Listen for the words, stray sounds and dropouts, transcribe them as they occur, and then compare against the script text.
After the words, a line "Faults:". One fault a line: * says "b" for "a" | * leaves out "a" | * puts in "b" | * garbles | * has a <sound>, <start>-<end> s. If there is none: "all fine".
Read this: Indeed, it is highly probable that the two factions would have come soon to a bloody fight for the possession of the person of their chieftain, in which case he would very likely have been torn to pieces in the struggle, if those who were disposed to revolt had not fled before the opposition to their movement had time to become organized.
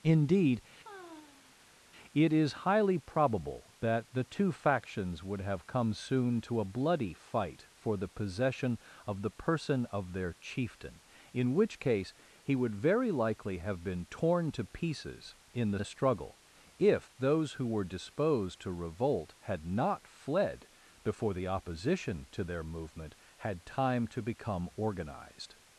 Indeed, it is highly probable that the two factions would have come soon to a bloody fight for the possession of the person of their chieftain, in which case he would very likely have been torn to pieces in the the struggle, if those who were disposed to revolt had not fled before the opposition to their movement had time to become organized.
Faults:
* has a sigh, 0.8-1.8 s
* puts in "the"